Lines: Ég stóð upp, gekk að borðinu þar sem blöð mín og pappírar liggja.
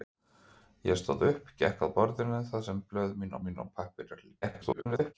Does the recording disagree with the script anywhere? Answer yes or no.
yes